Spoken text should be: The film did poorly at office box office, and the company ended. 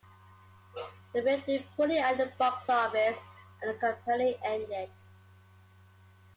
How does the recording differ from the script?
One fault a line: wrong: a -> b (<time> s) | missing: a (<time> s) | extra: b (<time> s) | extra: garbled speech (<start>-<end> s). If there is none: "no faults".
wrong: office -> the (2.2 s)